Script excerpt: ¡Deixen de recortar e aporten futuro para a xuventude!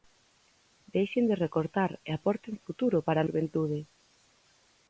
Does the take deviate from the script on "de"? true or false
false